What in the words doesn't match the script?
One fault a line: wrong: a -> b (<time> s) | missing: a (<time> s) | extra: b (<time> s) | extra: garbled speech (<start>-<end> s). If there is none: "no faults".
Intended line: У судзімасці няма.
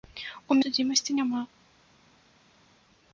no faults